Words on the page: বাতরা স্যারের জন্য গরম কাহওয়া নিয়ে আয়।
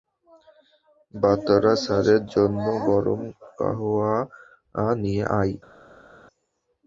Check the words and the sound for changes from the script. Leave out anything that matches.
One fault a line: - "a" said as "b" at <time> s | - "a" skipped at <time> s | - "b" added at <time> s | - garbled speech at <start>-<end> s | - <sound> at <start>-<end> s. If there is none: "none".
none